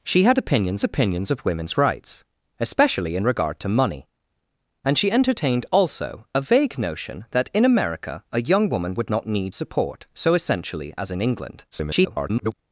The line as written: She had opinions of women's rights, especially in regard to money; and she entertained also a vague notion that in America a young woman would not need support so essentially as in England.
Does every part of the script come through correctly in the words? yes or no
no